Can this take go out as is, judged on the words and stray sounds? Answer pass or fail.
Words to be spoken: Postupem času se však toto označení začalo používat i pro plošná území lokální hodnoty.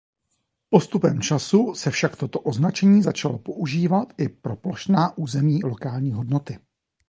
pass